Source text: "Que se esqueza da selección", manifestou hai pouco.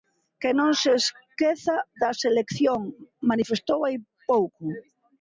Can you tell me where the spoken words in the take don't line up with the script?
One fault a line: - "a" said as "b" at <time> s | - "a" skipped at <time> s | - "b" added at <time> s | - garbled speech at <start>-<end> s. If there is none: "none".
- "non" added at 0.6 s